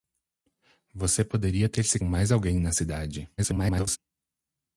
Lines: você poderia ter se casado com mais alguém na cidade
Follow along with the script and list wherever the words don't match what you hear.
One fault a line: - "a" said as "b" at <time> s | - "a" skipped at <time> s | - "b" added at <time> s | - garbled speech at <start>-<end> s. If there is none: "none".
- "casado com" skipped at 2.0 s
- garbled speech at 3.4-4.0 s